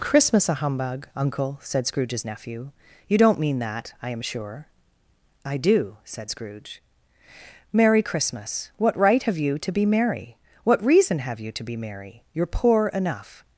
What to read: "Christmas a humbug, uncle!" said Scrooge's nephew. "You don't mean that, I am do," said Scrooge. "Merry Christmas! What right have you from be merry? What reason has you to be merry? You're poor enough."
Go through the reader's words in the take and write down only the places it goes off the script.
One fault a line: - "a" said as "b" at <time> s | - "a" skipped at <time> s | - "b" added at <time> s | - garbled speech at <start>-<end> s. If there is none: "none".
- "sure I" added at 4.2 s
- "from" said as "to" at 9.6 s
- "has" said as "have" at 11.2 s